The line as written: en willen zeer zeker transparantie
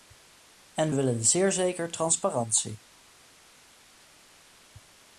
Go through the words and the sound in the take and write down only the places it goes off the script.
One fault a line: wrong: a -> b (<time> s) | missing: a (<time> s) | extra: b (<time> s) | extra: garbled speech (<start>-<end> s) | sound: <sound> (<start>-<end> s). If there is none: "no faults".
no faults